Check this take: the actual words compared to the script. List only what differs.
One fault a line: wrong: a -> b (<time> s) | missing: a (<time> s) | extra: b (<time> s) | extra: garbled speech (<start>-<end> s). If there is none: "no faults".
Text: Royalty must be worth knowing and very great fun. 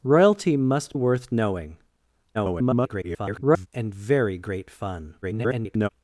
missing: be (0.9 s)
extra: garbled speech (2.3-3.7 s)
extra: garbled speech (5.2-5.9 s)